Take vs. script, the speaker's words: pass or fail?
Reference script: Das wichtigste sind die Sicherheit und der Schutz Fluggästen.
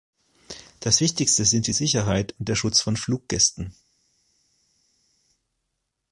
fail